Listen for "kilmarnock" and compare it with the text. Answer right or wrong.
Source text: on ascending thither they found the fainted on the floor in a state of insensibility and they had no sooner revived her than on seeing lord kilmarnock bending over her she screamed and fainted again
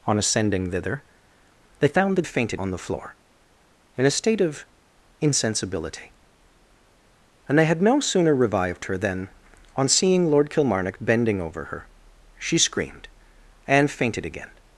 right